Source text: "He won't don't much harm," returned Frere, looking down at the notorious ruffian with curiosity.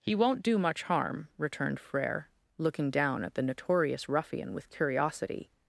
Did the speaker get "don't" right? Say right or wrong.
wrong